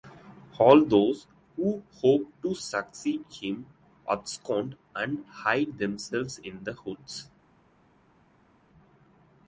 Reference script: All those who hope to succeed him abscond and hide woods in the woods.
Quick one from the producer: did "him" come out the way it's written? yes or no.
yes